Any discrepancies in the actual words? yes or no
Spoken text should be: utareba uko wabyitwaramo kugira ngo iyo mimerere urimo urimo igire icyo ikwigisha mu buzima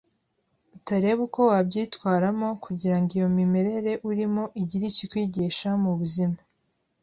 yes